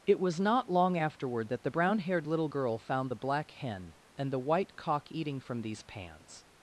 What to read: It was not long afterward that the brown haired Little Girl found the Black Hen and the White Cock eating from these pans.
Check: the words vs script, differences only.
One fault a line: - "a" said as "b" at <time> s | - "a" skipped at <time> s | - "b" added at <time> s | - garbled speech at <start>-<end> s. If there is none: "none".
none